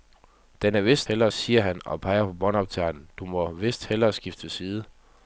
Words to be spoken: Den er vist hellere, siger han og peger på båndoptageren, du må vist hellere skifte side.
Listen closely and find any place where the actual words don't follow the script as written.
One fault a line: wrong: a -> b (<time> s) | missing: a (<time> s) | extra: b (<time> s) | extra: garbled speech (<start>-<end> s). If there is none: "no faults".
no faults